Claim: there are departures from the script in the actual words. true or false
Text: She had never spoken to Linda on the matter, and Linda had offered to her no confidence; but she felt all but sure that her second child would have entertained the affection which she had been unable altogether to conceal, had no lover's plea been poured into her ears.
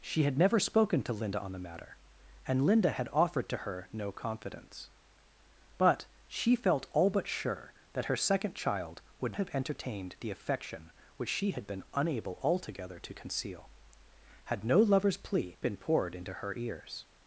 false